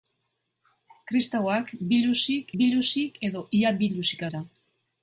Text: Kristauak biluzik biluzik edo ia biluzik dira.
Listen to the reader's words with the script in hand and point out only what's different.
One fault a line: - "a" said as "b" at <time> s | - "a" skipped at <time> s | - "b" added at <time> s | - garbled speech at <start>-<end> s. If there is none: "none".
none